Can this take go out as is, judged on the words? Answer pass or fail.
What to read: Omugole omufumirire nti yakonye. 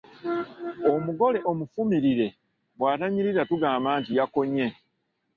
fail